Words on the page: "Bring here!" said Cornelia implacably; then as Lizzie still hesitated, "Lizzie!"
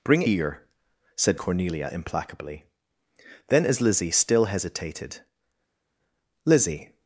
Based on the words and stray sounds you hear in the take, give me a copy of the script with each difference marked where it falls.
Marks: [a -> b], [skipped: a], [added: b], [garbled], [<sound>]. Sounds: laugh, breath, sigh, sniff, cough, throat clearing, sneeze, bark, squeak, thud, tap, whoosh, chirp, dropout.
"Bring here!" said Cornelia implacably; then as Lizzie still hesitated, "Lizzie!"